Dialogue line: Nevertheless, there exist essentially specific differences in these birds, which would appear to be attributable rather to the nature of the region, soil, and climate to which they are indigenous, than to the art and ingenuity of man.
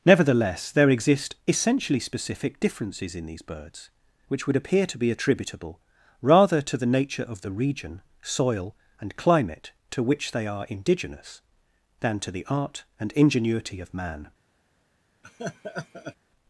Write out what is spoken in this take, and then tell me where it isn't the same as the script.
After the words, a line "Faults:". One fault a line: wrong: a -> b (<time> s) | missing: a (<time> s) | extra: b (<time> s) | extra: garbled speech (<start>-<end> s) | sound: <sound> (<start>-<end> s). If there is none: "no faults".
Nevertheless, there exist essentially specific differences in these birds, which would appear to be attributable rather to the nature of the region, soil, and climate to which they are indigenous, than to the art and ingenuity of man.
Faults:
sound: laugh (15.2-16.2 s)